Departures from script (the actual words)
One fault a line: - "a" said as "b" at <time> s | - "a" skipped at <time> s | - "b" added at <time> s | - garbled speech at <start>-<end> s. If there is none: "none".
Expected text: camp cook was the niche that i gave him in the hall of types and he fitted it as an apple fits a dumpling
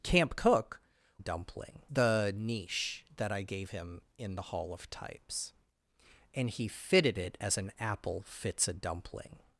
- "was" said as "dumpling" at 1.2 s